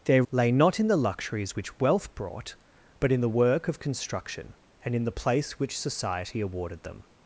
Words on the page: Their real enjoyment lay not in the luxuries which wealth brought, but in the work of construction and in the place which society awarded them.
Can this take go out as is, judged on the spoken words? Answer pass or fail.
fail